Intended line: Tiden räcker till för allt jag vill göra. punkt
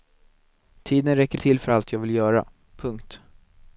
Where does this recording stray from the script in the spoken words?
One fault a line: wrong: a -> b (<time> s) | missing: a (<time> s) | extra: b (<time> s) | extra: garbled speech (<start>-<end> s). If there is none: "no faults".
no faults